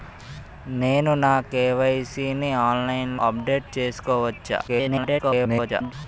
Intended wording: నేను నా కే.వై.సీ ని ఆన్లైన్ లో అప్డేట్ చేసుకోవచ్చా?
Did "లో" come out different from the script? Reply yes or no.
yes